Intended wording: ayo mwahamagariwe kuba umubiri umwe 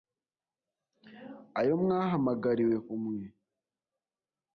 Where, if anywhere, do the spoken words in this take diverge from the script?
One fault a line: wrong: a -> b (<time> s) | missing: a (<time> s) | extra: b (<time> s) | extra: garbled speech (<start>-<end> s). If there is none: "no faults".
missing: kuba umubiri (2.8 s)